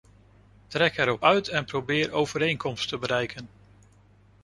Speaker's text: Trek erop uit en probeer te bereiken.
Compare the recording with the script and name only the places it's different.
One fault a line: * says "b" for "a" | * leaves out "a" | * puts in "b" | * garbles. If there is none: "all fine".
* puts in "overeenkomst"